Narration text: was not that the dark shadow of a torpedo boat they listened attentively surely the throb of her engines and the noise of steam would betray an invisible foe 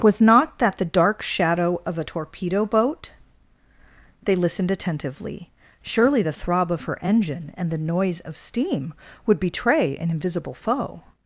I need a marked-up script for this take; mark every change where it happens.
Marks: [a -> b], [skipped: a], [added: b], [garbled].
was not that the dark shadow of a torpedo boat they listened attentively surely the throb of her [engines -> engine] and the noise of steam would betray an invisible foe